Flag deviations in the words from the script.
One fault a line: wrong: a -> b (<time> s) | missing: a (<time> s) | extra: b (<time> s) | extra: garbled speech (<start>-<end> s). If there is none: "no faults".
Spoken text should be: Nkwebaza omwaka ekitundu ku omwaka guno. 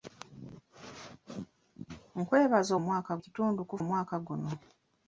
no faults